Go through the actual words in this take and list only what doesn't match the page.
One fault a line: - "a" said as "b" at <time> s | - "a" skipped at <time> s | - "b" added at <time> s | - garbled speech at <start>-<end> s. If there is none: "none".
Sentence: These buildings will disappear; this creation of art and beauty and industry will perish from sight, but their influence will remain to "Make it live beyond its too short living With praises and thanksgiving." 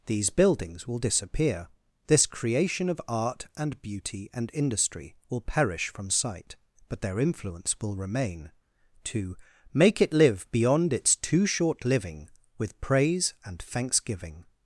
- "praises" said as "praise" at 12.8 s